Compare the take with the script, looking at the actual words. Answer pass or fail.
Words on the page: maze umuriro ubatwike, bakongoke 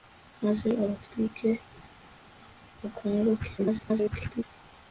fail